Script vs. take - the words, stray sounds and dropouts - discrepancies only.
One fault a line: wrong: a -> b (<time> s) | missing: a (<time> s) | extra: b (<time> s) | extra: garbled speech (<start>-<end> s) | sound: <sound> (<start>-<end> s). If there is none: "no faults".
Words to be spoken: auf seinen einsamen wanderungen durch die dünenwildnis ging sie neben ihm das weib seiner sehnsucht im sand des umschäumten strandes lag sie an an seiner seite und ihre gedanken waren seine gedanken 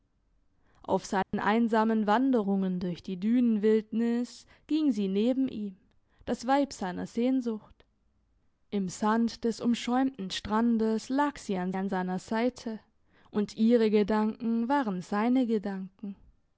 sound: dropout (1.2-1.3 s)